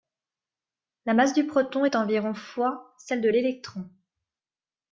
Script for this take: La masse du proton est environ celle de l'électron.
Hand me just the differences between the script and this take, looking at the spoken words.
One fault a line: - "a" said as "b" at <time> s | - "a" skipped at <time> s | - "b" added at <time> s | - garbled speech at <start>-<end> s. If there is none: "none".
- "fois" added at 2.3 s